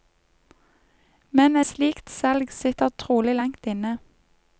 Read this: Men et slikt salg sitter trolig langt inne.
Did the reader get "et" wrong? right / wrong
wrong